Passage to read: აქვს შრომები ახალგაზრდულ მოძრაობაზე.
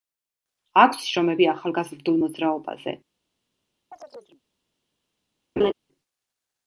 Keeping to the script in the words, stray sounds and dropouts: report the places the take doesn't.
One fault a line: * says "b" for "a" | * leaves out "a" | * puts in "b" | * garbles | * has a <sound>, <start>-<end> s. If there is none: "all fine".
* has a chirp, 3.9-4.4 s
* has a laugh, 5.6-5.7 s